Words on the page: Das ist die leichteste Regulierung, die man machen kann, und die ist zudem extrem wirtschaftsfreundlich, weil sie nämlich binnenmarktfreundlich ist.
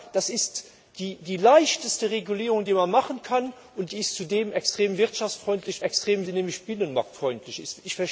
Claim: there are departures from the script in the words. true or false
true